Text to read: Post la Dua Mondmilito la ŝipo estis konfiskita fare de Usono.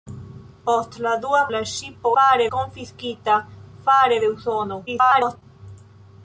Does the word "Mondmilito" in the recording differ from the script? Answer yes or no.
yes